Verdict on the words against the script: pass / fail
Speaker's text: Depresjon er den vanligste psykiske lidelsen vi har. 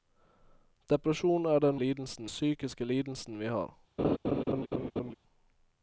fail